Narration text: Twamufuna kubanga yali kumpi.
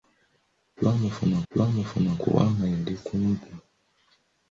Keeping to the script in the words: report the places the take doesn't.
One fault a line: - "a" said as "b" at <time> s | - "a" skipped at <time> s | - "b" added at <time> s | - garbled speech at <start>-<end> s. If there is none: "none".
- "twamufuna" added at 1.5 s